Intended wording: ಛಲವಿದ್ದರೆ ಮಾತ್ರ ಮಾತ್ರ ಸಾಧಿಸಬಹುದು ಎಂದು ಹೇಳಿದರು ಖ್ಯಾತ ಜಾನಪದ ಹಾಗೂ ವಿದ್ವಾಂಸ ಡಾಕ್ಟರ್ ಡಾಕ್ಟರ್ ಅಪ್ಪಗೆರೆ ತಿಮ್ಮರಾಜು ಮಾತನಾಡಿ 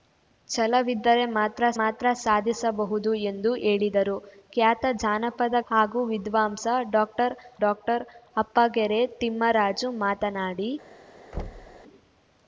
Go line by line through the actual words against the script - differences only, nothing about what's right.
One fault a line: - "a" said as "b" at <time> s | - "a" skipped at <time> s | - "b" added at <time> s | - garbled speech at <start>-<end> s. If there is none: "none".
none